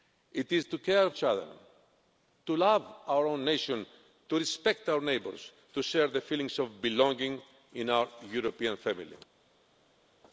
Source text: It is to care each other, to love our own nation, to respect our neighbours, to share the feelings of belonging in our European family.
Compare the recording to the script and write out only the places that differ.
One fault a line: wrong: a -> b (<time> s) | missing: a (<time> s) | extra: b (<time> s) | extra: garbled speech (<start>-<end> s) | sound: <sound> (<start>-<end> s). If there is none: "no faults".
no faults